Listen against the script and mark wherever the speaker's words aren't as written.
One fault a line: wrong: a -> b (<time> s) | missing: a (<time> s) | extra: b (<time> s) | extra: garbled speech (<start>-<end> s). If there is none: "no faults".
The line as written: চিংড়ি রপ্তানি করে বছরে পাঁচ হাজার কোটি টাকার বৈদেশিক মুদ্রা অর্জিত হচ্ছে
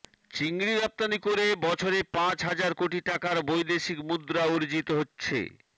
no faults